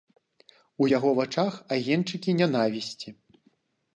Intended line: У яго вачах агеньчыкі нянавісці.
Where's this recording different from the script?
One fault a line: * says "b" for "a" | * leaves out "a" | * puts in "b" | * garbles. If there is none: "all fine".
all fine